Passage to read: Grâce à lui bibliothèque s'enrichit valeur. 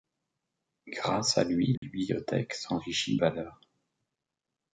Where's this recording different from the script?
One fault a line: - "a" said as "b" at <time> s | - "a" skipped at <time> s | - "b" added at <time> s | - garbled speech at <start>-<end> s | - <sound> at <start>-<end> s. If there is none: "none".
- dropout at 1.8-1.8 s